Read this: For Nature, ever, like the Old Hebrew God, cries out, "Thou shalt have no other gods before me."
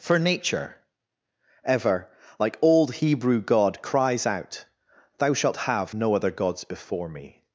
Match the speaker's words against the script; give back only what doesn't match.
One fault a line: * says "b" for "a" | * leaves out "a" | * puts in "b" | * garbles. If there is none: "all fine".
* leaves out "the"